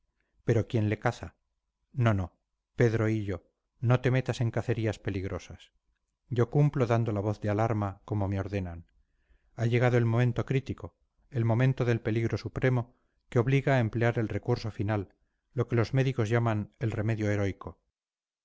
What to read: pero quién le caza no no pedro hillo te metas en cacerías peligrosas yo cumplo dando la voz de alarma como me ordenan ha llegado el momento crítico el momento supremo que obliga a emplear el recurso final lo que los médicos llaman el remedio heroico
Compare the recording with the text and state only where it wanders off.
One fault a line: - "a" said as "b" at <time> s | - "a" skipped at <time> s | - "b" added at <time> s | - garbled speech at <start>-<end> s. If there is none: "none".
- "no" added at 3.8 s
- "del peligro" added at 11.8 s